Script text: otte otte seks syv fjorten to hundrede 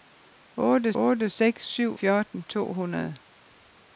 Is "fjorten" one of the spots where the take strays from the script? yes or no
no